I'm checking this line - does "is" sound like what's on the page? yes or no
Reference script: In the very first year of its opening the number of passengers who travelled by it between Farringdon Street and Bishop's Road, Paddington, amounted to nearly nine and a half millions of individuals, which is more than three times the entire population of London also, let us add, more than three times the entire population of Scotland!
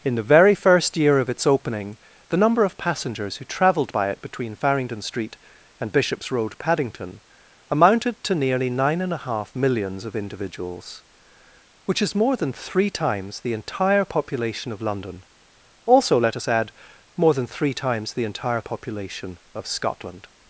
yes